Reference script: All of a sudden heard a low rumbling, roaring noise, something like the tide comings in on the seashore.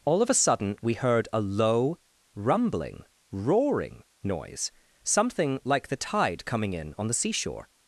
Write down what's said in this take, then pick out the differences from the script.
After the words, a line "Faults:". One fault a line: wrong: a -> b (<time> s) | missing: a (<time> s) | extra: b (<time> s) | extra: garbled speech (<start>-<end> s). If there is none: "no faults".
All of a sudden we heard a low rumbling, roaring noise, something like the tide coming in on the seashore.
Faults:
extra: we (0.8 s)
wrong: comings -> coming (6.4 s)